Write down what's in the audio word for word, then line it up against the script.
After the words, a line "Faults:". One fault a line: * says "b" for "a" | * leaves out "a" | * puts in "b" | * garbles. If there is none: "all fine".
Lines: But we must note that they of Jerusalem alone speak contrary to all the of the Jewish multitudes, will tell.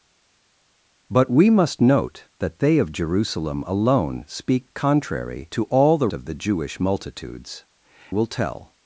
But we must note that they of Jerusalem alone speak contrary to all the of the Jewish multitudes, will tell.
Faults:
all fine